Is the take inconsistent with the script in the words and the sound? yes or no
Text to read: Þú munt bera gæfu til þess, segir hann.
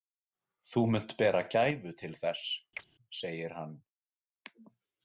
yes